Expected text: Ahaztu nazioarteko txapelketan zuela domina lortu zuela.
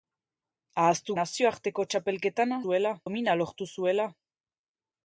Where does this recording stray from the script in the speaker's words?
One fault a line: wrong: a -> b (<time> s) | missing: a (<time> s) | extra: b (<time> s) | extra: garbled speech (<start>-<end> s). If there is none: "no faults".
no faults